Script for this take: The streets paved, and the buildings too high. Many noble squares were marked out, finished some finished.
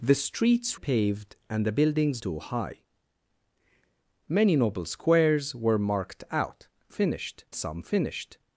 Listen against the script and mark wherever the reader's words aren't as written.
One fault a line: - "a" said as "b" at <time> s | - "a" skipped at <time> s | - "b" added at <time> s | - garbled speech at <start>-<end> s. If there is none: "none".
none